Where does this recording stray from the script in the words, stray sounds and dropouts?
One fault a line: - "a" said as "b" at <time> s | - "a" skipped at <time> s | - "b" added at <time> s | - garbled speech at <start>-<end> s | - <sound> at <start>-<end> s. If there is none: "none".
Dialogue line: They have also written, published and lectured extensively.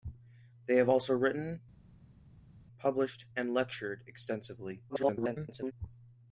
- garbled speech at 4.9-5.7 s